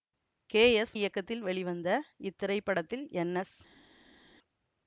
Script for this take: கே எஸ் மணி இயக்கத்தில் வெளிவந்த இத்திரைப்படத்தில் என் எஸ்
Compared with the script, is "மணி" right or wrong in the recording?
wrong